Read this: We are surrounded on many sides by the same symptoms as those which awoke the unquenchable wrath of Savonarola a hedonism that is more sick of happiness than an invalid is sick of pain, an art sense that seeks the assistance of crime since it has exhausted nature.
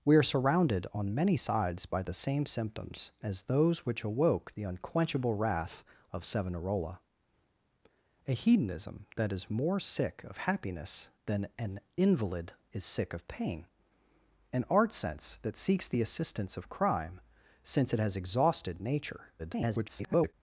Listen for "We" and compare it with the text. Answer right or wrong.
right